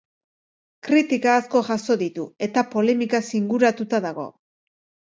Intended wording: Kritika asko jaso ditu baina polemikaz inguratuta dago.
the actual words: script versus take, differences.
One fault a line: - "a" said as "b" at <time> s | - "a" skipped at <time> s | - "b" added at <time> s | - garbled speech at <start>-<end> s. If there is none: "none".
- "baina" said as "eta" at 2.5 s